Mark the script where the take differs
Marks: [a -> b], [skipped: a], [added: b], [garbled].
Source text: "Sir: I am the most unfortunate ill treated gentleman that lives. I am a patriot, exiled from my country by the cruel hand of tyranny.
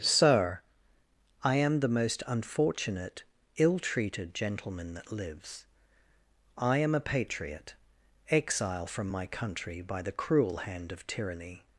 "Sir: I am the most unfortunate ill treated gentleman that lives. I am a patriot, [exiled -> exile] from my country by the cruel hand of tyranny.